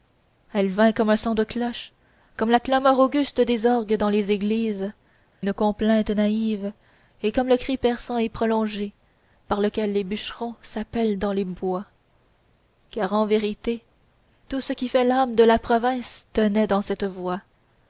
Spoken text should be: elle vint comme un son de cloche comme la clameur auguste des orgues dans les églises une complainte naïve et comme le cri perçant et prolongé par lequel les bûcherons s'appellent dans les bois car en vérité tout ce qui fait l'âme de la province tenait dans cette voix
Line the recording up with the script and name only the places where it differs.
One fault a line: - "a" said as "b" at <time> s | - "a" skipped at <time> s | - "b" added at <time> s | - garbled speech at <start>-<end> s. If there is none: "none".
none